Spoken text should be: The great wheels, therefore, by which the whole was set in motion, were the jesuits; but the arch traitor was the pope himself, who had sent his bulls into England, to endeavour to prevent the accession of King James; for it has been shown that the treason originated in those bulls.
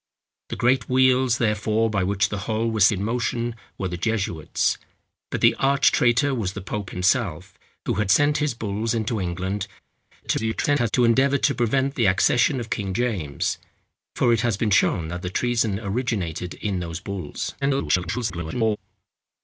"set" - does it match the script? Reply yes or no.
no